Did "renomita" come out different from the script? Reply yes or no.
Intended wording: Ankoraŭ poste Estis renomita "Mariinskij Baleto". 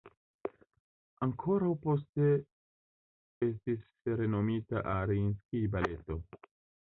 no